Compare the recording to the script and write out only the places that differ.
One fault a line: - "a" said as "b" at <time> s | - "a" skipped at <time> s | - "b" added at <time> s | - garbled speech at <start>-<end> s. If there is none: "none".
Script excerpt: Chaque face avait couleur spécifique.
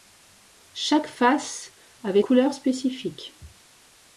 none